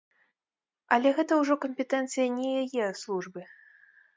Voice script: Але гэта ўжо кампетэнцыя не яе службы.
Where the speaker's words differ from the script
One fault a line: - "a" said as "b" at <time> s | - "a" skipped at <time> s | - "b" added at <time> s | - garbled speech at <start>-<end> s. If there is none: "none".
none